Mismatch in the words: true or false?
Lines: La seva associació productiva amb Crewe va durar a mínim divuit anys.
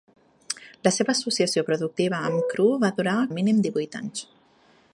false